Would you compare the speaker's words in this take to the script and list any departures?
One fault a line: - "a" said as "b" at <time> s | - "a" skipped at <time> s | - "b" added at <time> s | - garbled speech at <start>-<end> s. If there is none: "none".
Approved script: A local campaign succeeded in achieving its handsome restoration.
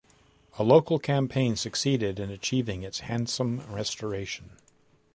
none